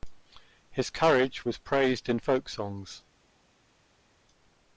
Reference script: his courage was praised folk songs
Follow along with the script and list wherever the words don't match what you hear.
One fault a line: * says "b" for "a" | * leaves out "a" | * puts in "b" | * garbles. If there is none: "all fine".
* puts in "in"